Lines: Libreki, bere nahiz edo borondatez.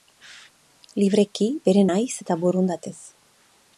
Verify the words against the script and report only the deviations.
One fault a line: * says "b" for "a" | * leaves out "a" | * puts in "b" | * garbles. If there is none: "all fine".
* says "eta" for "edo"